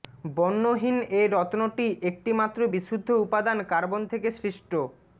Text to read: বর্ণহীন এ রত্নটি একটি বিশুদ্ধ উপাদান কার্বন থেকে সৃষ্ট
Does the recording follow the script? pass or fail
fail